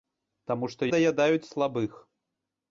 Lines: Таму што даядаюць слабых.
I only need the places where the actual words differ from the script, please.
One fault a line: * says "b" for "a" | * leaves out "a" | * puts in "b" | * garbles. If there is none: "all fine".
all fine